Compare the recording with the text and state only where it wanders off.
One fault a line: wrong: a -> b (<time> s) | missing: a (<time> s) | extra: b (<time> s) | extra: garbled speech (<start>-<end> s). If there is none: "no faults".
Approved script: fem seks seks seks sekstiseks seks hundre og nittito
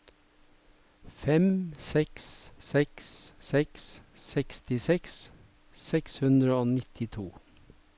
no faults